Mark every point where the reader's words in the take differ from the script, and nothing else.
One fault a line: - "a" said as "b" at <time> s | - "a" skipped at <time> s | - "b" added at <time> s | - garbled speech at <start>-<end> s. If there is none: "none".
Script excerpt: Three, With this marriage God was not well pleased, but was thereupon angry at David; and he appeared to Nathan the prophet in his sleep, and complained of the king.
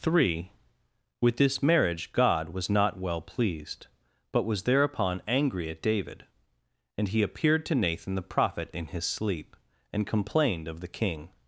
none